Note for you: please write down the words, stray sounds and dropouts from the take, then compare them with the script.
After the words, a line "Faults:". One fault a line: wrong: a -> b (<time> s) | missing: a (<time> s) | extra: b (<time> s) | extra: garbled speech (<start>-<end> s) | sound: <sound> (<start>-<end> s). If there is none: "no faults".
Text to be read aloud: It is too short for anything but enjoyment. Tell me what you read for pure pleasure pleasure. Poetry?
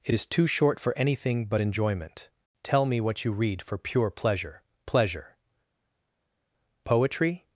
It is too short for anything but enjoyment. Tell me what you read for pure pleasure pleasure. Poetry?
Faults:
no faults